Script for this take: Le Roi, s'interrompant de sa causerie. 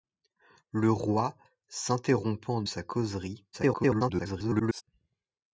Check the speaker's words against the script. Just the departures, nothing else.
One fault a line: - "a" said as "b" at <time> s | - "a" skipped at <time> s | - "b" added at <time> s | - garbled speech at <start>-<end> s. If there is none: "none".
- "de" skipped at 2.6 s
- garbled speech at 3.5-4.8 s